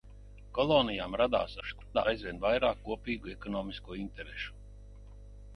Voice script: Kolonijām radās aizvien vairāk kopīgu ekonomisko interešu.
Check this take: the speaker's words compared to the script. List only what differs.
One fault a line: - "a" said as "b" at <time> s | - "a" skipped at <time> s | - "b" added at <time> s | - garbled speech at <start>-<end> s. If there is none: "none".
- garbled speech at 1.6-2.1 s